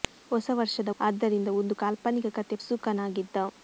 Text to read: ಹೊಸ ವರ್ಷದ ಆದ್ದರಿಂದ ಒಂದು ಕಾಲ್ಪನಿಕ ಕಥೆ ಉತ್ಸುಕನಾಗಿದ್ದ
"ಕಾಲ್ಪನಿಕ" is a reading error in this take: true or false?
false